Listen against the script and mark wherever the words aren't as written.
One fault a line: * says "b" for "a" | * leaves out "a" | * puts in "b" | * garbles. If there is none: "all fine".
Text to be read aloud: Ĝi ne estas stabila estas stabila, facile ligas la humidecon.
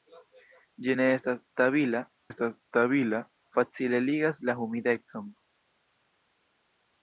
all fine